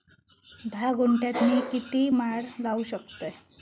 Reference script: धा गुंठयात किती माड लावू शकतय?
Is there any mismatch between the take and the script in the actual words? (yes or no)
yes